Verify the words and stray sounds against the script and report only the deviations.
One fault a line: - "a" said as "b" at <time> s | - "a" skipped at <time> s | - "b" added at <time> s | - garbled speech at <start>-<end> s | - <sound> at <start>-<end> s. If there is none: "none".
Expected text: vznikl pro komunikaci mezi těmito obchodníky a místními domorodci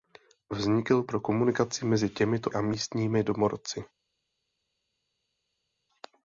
- "obchodníky" skipped at 2.5 s